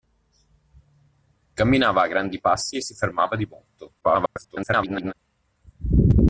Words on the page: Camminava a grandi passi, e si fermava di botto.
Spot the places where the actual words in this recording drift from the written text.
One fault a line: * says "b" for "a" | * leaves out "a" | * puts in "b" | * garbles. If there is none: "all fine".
* garbles